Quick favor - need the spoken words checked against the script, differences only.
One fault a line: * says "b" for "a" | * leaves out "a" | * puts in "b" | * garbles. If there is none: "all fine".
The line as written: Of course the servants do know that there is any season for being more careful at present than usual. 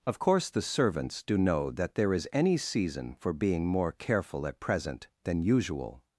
all fine